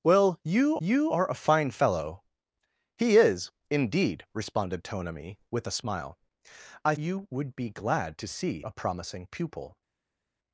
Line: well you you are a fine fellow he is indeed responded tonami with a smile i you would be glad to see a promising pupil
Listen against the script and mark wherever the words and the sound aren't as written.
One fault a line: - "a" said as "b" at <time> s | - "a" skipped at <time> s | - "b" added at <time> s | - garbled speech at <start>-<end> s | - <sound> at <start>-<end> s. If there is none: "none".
none